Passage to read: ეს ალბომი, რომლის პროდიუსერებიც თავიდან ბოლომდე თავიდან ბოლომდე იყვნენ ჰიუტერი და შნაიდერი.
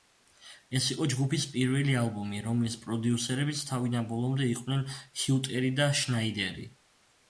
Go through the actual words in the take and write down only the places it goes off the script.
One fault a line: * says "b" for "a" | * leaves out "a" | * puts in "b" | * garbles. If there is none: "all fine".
* puts in "იყო ჯგუფის პირველი"
* leaves out "თავიდან ბოლომდე"